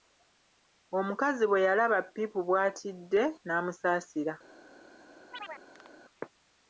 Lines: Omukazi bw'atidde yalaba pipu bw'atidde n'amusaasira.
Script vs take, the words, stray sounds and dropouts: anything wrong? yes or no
yes